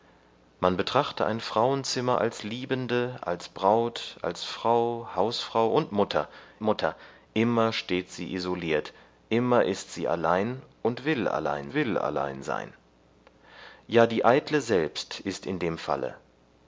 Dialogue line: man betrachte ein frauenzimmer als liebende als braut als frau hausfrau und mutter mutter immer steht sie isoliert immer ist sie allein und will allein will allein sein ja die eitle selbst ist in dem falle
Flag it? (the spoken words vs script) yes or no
no